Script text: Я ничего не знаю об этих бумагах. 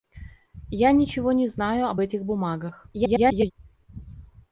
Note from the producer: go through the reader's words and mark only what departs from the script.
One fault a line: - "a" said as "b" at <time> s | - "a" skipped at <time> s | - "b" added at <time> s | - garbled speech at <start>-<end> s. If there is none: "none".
- garbled speech at 2.9-3.5 s